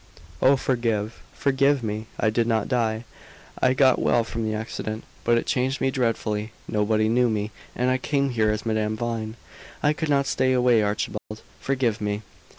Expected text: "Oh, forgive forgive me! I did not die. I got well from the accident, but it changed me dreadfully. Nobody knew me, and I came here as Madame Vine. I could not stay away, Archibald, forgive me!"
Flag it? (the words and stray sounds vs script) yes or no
yes